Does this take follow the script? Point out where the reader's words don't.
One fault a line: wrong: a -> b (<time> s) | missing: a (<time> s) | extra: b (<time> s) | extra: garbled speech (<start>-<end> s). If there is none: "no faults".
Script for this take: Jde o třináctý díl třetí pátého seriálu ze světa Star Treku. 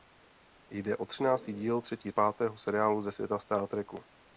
no faults